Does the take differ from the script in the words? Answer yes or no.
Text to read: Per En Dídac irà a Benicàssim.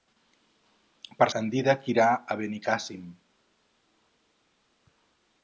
no